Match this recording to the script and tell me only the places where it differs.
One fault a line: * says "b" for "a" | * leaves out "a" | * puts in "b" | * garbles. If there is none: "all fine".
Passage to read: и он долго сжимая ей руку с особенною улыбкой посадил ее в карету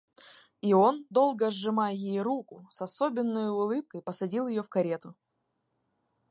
all fine